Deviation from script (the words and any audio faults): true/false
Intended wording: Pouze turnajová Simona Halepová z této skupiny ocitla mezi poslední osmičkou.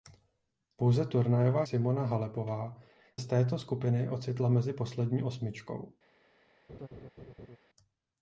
true